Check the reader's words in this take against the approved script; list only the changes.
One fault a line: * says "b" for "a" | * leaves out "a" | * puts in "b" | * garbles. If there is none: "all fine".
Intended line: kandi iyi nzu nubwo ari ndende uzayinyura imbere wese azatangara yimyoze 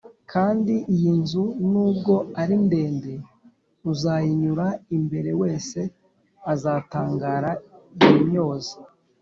all fine